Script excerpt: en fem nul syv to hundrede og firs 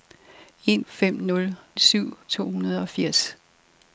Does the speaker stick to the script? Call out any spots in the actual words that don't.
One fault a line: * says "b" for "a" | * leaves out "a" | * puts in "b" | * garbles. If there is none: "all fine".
all fine